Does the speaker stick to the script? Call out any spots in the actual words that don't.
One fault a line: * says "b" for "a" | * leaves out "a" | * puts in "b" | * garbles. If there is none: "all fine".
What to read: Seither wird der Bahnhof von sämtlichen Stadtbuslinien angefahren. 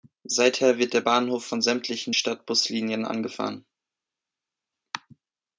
all fine